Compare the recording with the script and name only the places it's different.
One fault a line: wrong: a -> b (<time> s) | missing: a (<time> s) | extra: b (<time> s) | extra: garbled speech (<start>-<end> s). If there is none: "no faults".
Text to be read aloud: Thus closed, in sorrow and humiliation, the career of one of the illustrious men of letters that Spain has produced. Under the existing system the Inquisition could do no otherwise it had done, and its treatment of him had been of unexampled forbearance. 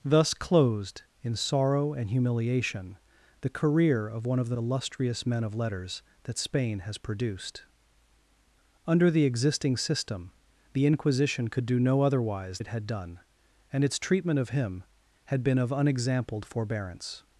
no faults